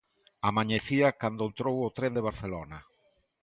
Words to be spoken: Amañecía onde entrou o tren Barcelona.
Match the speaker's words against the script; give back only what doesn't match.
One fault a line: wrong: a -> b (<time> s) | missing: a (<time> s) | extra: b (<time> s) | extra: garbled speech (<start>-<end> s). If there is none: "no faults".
wrong: onde -> cando (1.2 s)
extra: de (2.2 s)